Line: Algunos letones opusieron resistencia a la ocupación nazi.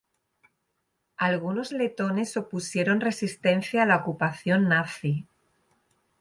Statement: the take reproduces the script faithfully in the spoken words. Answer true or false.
true